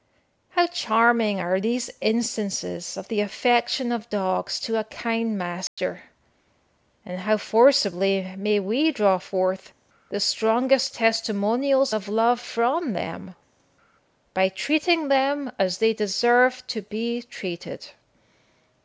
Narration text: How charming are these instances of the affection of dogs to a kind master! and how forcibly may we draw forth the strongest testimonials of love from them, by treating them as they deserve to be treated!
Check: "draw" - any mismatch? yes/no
no